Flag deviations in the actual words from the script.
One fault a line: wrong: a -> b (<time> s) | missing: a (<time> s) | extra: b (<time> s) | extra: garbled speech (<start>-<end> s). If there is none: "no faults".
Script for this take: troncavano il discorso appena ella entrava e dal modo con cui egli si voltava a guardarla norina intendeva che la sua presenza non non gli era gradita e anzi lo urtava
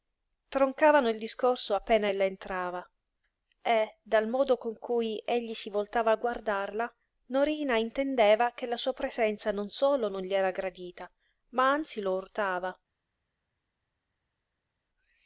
extra: solo (9.7 s)
wrong: e -> ma (11.5 s)